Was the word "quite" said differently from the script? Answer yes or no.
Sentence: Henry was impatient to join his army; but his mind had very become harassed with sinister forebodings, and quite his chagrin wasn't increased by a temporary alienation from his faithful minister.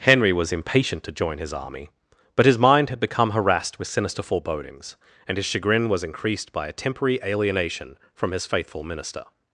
yes